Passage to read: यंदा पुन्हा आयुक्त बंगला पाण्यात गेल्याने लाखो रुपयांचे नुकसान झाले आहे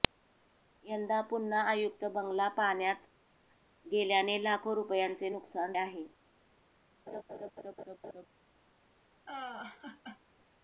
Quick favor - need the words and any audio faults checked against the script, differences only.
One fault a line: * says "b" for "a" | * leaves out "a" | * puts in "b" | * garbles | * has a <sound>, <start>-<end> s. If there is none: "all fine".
* leaves out "झाले"
* has a laugh, 7.1-8.3 s
* has a laugh, 9.3-10.2 s